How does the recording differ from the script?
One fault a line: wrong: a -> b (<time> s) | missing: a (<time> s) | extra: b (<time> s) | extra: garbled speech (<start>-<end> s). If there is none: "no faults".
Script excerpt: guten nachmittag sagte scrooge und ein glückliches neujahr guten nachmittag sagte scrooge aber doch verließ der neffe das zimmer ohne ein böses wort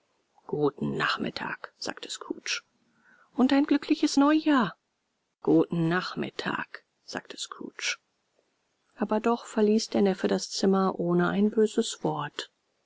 no faults